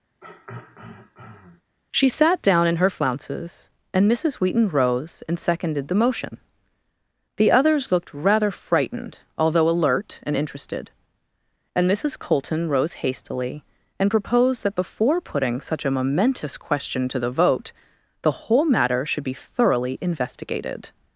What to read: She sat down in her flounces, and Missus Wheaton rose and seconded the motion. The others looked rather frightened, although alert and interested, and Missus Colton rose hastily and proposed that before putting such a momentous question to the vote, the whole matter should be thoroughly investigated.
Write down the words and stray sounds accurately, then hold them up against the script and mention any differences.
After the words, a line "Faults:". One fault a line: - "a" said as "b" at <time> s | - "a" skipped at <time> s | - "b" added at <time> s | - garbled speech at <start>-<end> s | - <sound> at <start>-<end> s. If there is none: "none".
She sat down in her flounces, and Missus Wheaton rose and seconded the motion. The others looked rather frightened, although alert and interested, and Missus Colton rose hastily and proposed that before putting such a momentous question to the vote, the whole matter should be thoroughly investigated.
Faults:
- throat clearing at 0.2-1.6 s